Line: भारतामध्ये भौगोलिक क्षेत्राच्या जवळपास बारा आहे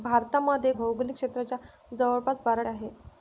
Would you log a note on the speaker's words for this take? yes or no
no